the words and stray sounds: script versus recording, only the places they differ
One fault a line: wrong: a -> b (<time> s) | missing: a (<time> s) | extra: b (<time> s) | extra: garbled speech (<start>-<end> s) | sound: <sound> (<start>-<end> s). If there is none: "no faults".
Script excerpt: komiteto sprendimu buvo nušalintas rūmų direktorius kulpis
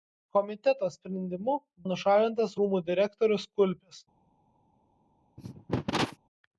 missing: buvo (1.5 s)
sound: cough (5.4-6.2 s)